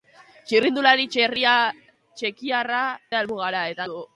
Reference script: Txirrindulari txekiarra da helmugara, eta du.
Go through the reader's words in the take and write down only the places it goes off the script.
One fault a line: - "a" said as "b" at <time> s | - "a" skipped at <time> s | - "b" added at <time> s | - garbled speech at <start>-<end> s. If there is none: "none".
none